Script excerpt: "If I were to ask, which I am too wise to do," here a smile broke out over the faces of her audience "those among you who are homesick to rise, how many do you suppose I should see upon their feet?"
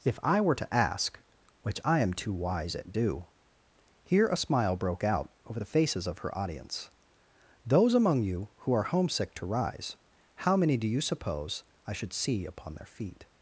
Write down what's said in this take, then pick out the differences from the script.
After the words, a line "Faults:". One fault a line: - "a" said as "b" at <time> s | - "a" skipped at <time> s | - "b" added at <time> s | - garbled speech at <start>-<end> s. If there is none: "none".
"If I were to ask, which I am too wise at do," here a smile broke out over the faces of her audience "those among you who are homesick to rise, how many do you suppose I should see upon their feet?"
Faults:
- "to" said as "at" at 2.8 s